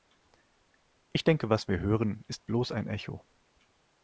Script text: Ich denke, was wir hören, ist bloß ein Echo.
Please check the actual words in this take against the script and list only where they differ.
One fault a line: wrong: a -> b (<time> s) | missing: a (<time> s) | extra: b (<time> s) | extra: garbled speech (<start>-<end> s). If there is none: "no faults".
no faults